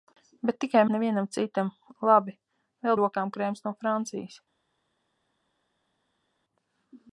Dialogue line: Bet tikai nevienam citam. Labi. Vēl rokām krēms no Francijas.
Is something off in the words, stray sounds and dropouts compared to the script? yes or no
no